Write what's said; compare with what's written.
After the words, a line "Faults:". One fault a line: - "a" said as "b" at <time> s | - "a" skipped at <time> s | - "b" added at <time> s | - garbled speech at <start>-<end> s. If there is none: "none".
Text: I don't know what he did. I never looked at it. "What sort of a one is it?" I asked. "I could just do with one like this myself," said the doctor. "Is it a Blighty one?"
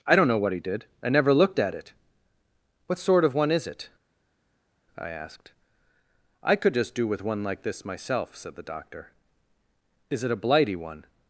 I don't know what he did. I never looked at it. "What sort of one is it?" I asked. "I could just do with one like this myself," said the doctor. "Is it a Blighty one?"
Faults:
- "a" skipped at 3.3 s